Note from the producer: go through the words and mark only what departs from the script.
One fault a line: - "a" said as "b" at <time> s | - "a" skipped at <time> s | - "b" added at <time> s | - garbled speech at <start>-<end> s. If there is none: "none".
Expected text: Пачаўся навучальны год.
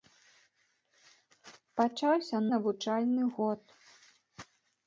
none